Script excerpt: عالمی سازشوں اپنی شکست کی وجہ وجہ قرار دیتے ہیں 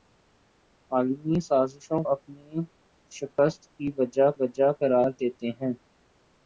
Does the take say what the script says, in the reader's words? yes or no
yes